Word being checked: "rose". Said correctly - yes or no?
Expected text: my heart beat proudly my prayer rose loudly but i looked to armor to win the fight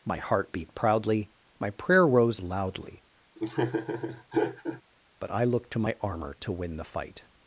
yes